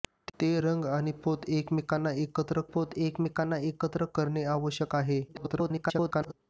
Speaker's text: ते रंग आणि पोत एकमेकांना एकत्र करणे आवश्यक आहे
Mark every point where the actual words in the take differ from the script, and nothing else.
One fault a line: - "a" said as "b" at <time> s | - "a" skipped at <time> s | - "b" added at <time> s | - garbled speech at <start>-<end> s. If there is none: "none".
- "पोत एकमेकांना एकत्र" added at 2.7 s
- garbled speech at 5.3-6.3 s